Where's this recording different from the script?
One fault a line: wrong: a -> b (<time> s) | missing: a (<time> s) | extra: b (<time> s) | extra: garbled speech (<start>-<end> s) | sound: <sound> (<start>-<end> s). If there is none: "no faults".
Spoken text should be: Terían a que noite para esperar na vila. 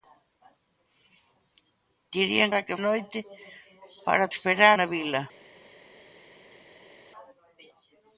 no faults